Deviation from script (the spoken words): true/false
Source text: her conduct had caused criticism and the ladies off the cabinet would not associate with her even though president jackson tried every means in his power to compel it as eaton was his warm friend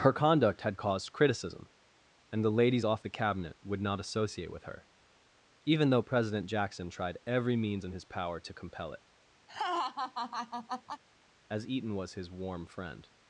false